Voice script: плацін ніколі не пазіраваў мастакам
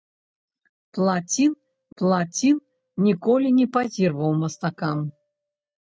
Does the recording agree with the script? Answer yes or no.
no